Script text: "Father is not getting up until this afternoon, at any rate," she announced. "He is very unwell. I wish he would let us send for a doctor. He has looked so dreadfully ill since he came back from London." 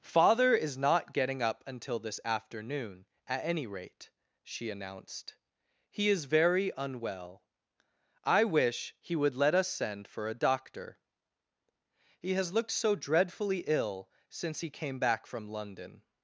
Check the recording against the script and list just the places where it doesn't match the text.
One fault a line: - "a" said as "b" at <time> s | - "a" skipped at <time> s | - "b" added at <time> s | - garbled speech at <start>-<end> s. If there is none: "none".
none